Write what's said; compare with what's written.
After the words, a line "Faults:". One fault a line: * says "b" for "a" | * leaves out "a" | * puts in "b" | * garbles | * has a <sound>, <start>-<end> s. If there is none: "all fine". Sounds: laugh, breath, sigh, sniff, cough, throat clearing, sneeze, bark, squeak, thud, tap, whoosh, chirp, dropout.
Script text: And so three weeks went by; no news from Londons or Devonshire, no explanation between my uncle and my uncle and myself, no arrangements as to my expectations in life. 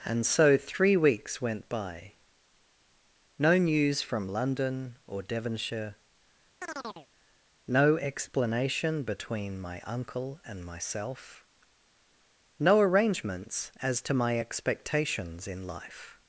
And so three weeks went by; no news from London or Devonshire, no explanation between my uncle and myself, no arrangements as to my expectations in life.
Faults:
* says "London" for "Londons"
* has a chirp, 6.6-7.1 s
* leaves out "my uncle and"